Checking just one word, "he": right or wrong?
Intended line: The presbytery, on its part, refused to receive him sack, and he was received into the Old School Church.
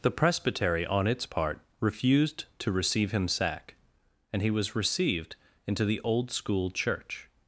right